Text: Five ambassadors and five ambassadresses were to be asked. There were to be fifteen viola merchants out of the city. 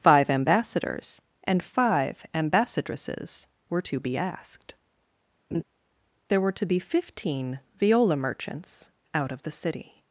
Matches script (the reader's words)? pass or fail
pass